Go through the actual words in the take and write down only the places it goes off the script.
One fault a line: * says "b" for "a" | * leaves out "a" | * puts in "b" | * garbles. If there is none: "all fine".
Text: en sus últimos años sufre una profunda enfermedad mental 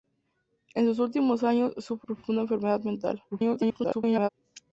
* leaves out "una"
* garbles